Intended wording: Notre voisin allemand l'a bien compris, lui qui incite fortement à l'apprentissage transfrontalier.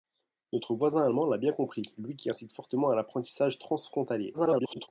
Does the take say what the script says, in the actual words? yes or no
no